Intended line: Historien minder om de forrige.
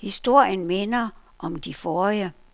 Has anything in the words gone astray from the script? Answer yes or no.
no